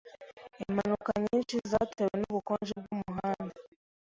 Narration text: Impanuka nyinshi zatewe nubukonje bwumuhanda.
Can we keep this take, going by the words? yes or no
yes